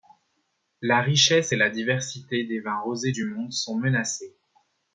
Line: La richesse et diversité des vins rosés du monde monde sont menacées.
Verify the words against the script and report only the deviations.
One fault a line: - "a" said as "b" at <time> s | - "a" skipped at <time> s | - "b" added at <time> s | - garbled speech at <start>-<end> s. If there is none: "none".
- "la" added at 1.6 s
- "monde" skipped at 3.5 s